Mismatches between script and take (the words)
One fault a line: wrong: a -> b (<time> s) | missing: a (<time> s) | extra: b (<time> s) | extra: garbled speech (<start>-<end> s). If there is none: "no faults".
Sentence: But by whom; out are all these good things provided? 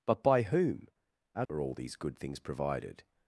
no faults